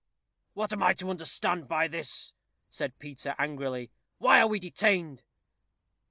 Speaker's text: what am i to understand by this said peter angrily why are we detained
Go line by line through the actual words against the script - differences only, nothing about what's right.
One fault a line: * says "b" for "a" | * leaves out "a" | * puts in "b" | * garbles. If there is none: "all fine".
all fine